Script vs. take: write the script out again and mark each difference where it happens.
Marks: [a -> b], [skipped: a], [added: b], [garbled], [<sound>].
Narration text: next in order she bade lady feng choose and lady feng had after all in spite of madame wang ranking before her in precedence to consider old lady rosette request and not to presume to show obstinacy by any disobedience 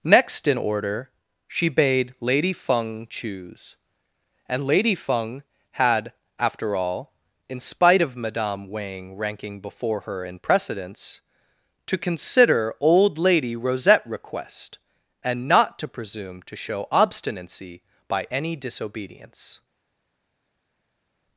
next in order she bade lady feng choose and lady feng had after all in spite of madame wang ranking before her in precedence to consider old lady rosette request and not to presume to show obstinacy by any disobedience